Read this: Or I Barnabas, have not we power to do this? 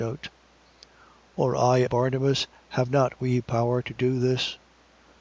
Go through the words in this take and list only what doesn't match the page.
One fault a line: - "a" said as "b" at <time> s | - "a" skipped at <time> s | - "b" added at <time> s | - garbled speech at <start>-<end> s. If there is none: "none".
none